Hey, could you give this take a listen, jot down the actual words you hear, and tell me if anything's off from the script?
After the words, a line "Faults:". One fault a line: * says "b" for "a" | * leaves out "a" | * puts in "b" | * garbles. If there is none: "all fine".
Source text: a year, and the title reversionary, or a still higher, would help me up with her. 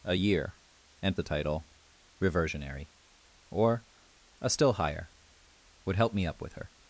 a year, and the title reversionary, or a still higher, would help me up with her.
Faults:
all fine